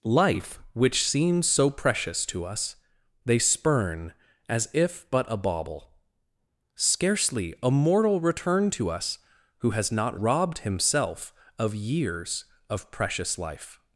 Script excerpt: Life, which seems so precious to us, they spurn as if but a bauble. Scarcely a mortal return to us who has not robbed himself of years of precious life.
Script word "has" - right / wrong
right